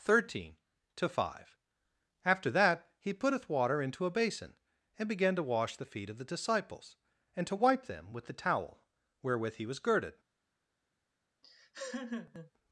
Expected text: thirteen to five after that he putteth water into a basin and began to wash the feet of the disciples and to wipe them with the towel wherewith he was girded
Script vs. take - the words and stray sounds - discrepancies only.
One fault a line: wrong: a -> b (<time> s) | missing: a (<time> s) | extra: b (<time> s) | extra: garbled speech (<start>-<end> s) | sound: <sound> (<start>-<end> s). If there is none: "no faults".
sound: laugh (11.4-12.5 s)